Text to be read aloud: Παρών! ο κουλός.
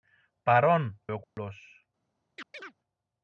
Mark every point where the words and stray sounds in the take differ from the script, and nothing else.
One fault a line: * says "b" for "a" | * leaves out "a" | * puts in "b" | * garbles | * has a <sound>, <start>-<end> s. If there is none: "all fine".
* has a dropout, 1.2-1.4 s
* has a chirp, 2.4-2.7 s